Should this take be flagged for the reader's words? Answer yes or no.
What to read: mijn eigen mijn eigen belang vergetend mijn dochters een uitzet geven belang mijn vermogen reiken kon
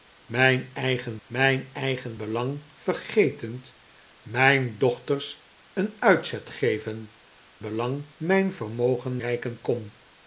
no